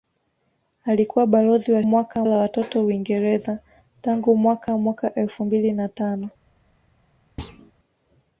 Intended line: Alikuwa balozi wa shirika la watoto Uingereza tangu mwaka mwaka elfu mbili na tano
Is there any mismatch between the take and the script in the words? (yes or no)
yes